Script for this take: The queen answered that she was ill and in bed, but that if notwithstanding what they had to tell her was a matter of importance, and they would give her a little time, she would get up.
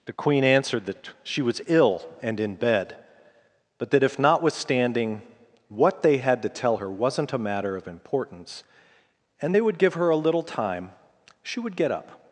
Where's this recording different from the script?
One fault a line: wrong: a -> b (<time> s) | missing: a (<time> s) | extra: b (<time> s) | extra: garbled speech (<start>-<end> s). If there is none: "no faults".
wrong: was -> wasn't (6.9 s)